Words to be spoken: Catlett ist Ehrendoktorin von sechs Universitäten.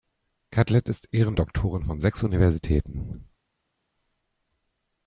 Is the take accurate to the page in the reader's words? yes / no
yes